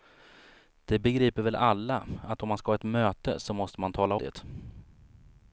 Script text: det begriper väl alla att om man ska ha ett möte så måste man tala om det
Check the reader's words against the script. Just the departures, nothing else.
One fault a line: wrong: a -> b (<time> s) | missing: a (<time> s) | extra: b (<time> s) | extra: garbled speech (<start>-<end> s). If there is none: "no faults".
missing: om (4.2 s)